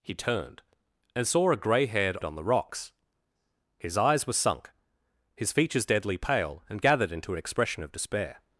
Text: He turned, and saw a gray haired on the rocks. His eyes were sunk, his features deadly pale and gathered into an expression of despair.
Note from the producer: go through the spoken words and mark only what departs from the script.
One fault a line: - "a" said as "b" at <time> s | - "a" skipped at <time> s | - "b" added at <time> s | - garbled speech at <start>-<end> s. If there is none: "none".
none